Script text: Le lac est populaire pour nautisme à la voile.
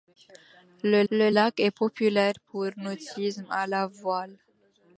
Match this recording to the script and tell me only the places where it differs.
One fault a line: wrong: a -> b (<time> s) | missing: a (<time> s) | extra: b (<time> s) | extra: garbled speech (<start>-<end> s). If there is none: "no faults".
extra: le (1.1 s)